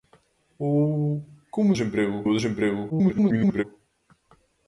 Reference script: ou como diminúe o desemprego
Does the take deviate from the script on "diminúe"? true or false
true